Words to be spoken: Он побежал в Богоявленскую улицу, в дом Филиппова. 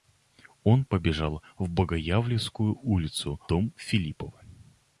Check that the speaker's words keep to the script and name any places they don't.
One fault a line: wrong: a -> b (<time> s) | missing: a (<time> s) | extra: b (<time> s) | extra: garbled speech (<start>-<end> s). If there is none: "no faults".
missing: в (3.4 s)